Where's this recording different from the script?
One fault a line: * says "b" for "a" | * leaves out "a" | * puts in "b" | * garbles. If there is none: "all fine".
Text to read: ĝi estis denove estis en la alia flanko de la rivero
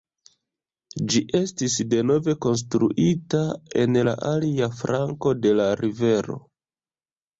* says "konstruita" for "estis"